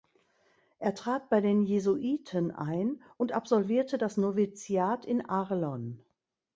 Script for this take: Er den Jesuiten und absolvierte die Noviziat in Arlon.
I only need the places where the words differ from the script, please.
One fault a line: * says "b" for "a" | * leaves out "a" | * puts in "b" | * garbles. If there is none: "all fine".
* puts in "trat bei"
* puts in "ein"
* says "das" for "die"